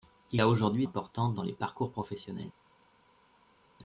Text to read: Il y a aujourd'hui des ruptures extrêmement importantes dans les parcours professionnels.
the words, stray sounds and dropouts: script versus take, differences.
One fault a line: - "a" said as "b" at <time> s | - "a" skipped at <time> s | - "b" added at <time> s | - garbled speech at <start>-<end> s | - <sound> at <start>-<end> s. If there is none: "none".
- "y" skipped at 0.4 s
- "des ruptures extrêmement" skipped at 0.9 s